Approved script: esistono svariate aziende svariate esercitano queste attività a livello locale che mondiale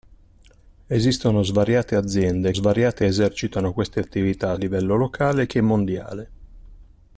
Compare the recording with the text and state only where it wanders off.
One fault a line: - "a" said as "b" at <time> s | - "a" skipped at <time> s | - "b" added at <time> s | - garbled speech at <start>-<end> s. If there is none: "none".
none